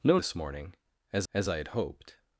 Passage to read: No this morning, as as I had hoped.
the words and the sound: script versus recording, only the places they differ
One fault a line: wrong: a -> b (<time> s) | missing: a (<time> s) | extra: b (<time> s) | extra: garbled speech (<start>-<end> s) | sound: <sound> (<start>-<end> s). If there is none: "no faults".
no faults